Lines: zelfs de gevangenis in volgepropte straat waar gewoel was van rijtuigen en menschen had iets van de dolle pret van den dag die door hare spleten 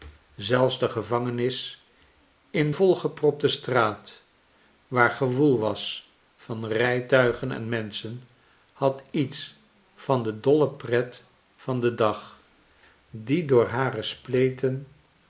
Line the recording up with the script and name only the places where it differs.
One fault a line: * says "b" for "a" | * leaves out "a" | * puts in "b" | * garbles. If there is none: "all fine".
all fine